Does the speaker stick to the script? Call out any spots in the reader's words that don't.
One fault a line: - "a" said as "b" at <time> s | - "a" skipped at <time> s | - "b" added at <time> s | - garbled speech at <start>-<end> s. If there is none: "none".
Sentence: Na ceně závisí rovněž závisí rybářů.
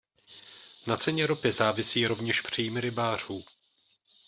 - "ropy" added at 1.3 s
- "závisí" said as "příjmy" at 2.4 s